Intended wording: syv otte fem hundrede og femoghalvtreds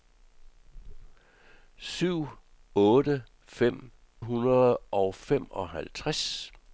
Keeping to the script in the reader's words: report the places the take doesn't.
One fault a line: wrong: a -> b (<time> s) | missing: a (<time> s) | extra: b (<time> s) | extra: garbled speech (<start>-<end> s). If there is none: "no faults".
no faults